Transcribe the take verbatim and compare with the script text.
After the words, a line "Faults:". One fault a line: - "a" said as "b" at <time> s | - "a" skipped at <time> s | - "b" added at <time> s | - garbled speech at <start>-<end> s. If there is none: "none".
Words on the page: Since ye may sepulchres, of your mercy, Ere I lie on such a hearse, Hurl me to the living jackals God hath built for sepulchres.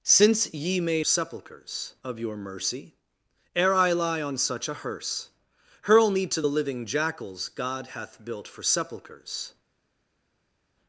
Since ye may sepulchres, of your mercy, Ere I lie on such a hearse, Hurl me to the living jackals God hath built for sepulchres.
Faults:
none